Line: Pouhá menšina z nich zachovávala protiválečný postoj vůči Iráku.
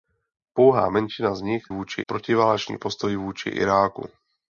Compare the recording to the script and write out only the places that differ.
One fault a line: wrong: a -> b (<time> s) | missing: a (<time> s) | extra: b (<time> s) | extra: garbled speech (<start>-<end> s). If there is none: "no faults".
wrong: zachovávala -> vůči (1.7 s)